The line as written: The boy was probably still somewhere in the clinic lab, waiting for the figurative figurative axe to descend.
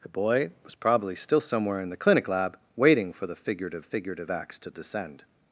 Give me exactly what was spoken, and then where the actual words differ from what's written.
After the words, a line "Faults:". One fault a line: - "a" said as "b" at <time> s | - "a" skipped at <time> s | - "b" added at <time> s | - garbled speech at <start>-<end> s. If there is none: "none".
The boy was probably still somewhere in the clinic lab, waiting for the figurative figurative axe to descend.
Faults:
none